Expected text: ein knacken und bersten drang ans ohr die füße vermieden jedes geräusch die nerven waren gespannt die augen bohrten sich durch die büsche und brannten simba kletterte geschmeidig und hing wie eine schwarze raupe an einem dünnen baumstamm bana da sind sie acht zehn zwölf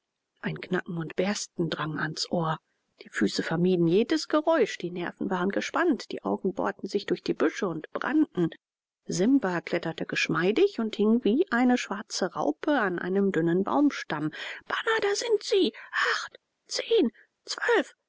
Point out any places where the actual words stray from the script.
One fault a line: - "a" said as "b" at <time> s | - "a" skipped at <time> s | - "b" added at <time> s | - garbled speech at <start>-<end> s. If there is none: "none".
none